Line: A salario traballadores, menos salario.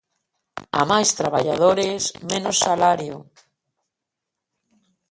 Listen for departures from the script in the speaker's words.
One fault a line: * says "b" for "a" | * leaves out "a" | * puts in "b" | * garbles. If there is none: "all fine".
* says "máis" for "salario"